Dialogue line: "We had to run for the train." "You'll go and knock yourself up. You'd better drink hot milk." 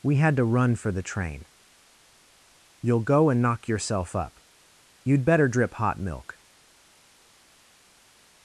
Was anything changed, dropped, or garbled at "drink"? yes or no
yes